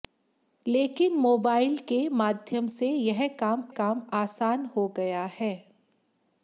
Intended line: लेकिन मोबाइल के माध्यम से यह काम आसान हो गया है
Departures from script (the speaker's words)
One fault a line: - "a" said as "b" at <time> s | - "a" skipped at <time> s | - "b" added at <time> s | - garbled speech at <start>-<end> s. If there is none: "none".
- "काम" added at 3.8 s